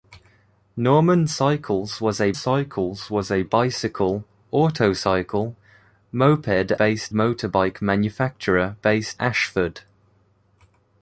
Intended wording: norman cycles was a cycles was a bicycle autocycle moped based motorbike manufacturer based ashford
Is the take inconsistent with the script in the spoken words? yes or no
no